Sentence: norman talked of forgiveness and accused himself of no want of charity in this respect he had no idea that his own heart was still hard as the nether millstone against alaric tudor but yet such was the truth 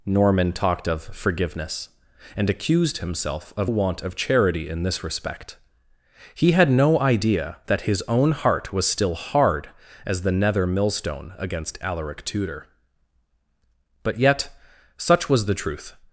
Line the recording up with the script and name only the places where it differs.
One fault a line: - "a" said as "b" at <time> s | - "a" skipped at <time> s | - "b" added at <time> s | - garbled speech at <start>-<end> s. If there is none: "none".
- "no" skipped at 3.7 s